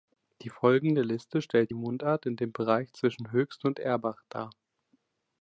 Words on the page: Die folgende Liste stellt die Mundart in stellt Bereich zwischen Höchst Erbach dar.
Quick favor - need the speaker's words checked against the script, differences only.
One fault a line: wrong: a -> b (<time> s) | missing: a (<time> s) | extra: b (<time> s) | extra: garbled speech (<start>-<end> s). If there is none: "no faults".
wrong: stellt -> dem (2.3 s)
extra: und (3.6 s)